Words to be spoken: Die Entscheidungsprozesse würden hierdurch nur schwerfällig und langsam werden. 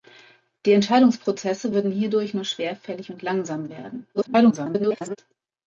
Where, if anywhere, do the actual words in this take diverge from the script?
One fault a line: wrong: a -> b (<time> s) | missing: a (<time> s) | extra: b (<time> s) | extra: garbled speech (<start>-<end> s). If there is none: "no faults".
extra: garbled speech (4.1-5.2 s)